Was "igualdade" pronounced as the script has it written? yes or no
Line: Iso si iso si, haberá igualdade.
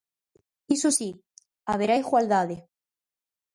yes